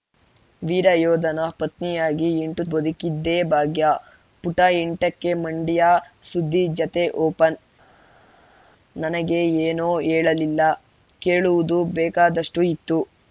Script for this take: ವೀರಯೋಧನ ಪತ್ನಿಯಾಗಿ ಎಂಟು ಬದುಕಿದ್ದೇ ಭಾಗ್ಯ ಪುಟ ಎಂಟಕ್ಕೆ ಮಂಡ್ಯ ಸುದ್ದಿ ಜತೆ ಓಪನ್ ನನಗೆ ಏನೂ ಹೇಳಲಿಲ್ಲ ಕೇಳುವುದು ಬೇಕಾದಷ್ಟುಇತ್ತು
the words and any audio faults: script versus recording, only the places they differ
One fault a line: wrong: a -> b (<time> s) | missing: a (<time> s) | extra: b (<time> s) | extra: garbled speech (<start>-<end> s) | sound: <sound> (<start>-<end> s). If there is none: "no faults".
no faults